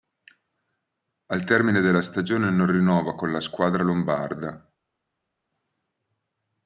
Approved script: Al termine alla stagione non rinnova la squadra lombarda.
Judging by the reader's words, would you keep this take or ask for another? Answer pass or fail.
fail